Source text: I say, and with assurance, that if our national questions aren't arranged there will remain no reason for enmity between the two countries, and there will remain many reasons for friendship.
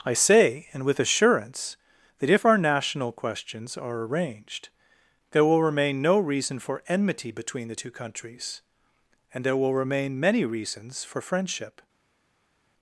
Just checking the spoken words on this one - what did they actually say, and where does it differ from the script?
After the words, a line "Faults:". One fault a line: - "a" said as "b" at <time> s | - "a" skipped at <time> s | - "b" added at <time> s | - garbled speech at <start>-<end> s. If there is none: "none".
I say, and with assurance, that if our national questions are arranged there will remain no reason for enmity between the two countries, and there will remain many reasons for friendship.
Faults:
- "aren't" said as "are" at 3.8 s